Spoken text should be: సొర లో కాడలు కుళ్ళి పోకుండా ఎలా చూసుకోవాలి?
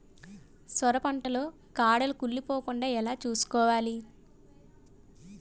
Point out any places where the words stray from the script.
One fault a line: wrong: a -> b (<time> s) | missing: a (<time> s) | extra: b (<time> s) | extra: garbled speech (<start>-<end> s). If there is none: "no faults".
extra: పంట (1.0 s)